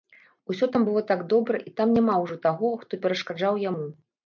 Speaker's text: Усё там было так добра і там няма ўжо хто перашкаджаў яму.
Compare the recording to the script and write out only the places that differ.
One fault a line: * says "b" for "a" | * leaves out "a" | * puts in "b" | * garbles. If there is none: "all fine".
* puts in "таго"